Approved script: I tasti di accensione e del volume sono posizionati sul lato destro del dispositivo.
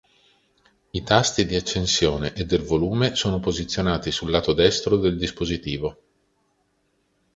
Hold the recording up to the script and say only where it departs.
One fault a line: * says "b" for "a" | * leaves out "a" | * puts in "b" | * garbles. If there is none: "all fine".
all fine